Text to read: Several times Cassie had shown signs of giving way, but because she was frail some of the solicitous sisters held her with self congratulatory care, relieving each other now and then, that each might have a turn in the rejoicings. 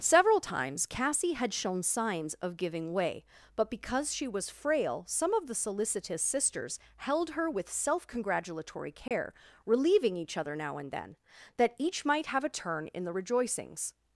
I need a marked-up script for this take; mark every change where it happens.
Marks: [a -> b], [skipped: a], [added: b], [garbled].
Several times Cassie had shown signs of giving way, but because she was frail some of the solicitous sisters held her with self congratulatory care, relieving each other now and then, that each might have a turn in the rejoicings.